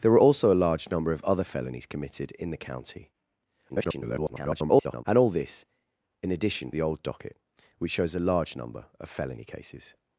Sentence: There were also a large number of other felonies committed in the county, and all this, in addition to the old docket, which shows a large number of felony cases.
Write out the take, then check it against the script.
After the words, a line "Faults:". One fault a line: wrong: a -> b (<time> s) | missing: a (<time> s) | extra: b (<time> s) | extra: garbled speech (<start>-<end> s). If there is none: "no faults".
There were also a large number of other felonies committed in the county, [garbled] and all this, in addition the old docket, which shows a large number of felony cases.
Faults:
extra: garbled speech (3.7-5.0 s)
missing: to (6.7 s)